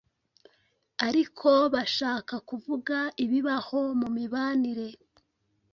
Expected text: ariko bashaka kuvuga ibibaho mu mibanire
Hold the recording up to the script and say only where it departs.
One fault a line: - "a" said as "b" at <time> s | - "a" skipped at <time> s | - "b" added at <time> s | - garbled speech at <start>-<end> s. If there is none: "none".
none